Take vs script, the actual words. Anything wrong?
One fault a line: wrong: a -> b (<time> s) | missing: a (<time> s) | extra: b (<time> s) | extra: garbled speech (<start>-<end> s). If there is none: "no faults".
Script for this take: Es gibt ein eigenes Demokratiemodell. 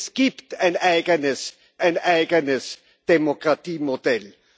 extra: ein eigenes (1.8 s)